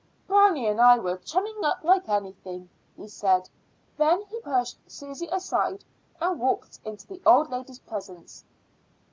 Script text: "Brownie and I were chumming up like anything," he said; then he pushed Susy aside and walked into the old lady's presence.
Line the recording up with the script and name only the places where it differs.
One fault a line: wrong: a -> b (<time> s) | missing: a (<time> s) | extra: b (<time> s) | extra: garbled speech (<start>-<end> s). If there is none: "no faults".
no faults